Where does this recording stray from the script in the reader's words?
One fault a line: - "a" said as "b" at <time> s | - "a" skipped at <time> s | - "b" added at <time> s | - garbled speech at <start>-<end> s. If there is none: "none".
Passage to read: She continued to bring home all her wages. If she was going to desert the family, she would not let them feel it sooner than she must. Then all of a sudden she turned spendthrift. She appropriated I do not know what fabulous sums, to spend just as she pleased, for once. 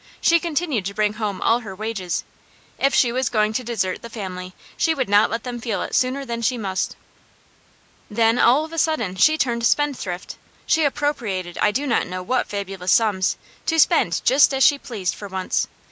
none